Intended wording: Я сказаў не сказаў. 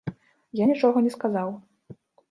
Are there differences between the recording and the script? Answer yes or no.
yes